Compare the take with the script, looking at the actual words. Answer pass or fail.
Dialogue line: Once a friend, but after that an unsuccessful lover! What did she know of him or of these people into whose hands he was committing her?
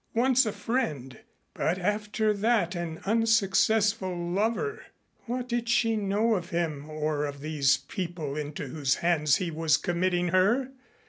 pass